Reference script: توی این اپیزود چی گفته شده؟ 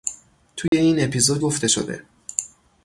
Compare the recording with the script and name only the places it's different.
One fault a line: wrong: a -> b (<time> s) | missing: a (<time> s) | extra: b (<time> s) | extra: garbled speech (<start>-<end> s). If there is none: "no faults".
missing: چی (1.4 s)